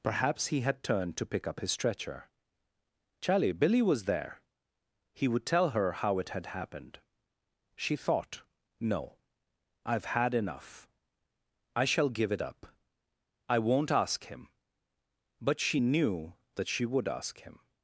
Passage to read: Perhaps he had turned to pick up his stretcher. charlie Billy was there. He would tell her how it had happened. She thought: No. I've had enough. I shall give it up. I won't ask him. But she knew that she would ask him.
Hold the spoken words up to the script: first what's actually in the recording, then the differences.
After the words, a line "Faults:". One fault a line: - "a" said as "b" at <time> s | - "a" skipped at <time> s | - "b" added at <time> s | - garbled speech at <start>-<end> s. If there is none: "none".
Perhaps he had turned to pick up his stretcher. charlie Billy was there. He would tell her how it had happened. She thought: No. I've had enough. I shall give it up. I won't ask him. But she knew that she would ask him.
Faults:
none